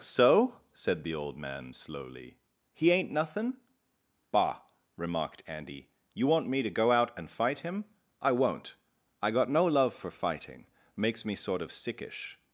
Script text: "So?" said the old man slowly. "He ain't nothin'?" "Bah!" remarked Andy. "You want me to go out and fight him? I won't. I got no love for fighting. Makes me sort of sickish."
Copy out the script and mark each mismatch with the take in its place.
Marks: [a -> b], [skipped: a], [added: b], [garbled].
"So?" said the old man slowly. "He ain't nothin'?" "Bah!" remarked Andy. "You want me to go out and fight him? I won't. I got no love for fighting. Makes me sort of sickish."